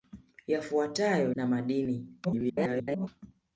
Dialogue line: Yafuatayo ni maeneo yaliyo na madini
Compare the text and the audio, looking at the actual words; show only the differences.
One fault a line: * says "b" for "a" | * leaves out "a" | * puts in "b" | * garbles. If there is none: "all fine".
* leaves out "ni maeneo yaliyo"
* garbles